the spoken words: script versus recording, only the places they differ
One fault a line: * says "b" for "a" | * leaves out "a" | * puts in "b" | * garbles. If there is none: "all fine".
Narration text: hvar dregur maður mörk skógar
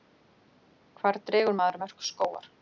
all fine